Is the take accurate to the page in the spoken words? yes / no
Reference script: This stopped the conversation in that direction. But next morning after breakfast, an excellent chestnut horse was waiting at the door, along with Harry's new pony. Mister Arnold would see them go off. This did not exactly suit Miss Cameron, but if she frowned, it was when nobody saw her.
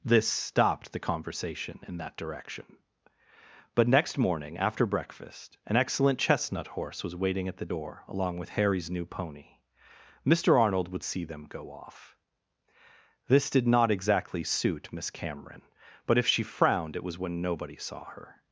yes